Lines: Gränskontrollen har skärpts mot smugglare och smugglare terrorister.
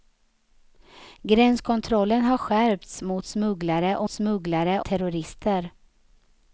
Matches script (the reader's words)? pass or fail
pass